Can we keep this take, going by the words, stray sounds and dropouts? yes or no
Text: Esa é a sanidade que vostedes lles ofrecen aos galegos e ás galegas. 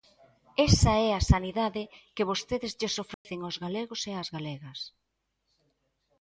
no